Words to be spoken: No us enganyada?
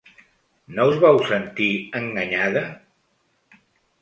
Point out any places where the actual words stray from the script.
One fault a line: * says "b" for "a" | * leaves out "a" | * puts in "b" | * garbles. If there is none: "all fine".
* puts in "vau sentir"